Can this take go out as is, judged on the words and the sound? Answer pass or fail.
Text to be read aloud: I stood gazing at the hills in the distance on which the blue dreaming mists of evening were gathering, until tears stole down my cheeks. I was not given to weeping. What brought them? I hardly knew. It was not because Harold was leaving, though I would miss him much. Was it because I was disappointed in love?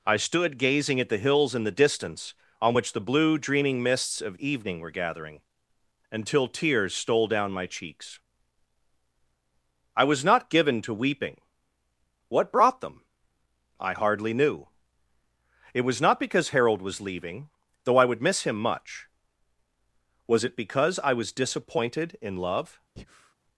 fail